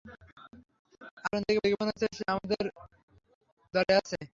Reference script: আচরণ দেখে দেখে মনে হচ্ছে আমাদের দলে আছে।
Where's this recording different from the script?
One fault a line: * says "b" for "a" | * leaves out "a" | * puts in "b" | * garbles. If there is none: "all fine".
all fine